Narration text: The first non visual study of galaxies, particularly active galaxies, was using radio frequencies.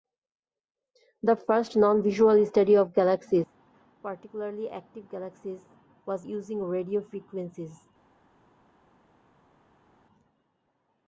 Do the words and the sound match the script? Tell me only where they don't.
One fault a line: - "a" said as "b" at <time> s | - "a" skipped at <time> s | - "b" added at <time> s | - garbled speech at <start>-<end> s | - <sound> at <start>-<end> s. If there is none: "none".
none